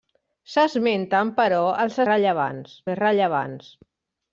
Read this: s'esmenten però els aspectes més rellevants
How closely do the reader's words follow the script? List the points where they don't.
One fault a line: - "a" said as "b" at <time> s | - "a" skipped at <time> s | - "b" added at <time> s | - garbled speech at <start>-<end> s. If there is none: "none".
- "aspectes" said as "rellevants" at 2.1 s